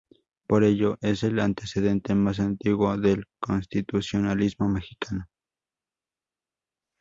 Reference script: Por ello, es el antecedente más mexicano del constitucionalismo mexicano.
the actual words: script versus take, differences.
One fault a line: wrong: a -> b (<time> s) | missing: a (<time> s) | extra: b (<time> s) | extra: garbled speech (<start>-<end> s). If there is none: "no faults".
wrong: mexicano -> antiguo (2.4 s)